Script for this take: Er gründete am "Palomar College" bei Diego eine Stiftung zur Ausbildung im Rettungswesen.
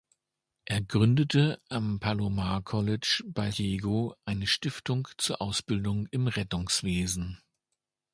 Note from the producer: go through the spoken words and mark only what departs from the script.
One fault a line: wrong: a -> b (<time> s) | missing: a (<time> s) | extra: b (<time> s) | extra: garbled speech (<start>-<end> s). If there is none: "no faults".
no faults